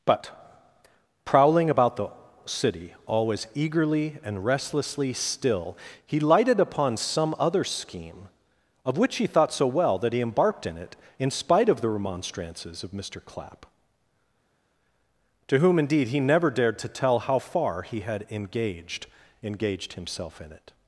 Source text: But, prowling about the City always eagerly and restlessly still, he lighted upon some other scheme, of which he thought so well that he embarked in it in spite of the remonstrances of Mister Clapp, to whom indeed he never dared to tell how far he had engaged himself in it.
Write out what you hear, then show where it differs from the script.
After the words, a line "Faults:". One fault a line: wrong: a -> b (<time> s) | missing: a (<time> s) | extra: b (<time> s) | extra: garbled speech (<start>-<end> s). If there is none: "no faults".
But, prowling about the City always eagerly and restlessly still, he lighted upon some other scheme, of which he thought so well that he embarked in it in spite of the remonstrances of Mister Clapp, to whom indeed he never dared to tell how far he had engaged engaged himself in it.
Faults:
extra: engaged (19.4 s)